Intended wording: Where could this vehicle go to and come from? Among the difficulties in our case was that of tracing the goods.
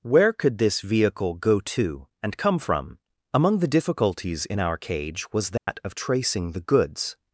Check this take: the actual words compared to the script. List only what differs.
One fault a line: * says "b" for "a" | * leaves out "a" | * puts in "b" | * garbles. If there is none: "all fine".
* says "cage" for "case"